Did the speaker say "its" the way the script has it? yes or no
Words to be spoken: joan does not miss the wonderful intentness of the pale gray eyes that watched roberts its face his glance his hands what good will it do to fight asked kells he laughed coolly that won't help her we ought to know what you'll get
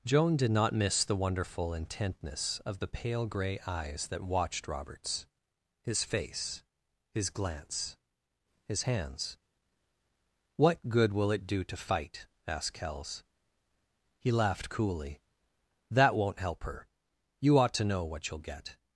no